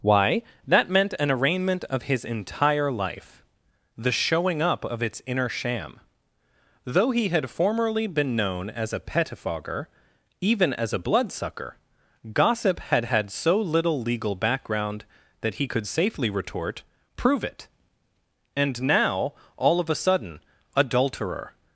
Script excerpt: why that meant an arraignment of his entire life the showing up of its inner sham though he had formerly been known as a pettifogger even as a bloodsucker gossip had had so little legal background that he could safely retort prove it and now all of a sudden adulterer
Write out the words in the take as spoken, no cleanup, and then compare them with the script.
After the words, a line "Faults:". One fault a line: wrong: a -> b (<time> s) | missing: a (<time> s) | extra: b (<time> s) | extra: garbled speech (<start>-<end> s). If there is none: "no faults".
why that meant an arraignment of his entire life the showing up of its inner sham though he had formerly been known as a pettifogger even as a bloodsucker gossip had had so little legal background that he could safely retort prove it and now all of a sudden adulterer
Faults:
no faults